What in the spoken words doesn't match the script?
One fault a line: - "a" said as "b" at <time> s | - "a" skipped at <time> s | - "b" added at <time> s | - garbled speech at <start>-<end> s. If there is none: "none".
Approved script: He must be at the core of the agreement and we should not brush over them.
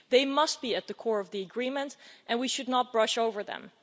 - "He" said as "They" at 0.1 s